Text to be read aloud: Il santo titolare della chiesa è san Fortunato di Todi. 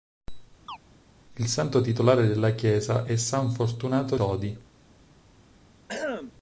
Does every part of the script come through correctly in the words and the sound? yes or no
no